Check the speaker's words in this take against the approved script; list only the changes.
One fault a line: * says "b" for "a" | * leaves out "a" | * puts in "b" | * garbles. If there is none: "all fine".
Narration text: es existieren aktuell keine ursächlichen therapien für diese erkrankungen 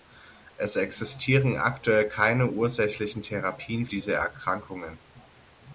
* leaves out "für"